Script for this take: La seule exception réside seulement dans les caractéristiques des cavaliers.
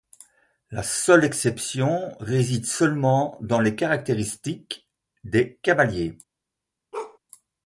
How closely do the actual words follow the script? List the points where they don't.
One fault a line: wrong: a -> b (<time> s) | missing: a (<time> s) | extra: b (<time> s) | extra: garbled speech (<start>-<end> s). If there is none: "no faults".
no faults